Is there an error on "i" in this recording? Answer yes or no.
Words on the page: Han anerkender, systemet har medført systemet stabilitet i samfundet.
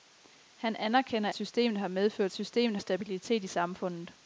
no